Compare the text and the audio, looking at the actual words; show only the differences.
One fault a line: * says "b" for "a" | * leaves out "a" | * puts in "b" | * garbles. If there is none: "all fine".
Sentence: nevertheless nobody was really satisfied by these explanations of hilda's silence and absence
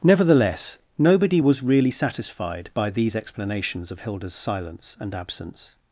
all fine